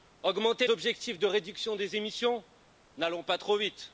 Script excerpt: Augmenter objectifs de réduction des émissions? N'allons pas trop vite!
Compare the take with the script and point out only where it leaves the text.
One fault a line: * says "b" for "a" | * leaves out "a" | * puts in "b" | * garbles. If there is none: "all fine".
all fine